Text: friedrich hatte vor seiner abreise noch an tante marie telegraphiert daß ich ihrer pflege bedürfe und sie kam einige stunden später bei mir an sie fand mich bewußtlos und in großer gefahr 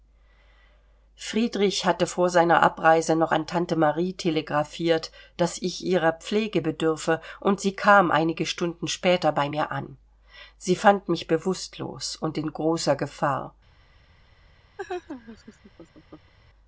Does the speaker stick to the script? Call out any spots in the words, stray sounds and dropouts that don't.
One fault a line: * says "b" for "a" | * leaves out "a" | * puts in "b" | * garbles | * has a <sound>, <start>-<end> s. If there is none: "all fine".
* has a laugh, 14.8-16.3 s